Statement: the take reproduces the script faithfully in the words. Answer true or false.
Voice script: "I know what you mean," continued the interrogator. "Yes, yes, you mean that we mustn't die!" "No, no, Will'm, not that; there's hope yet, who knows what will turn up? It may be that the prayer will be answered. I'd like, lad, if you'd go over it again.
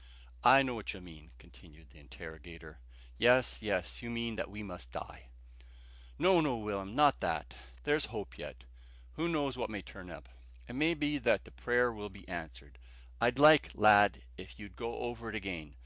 false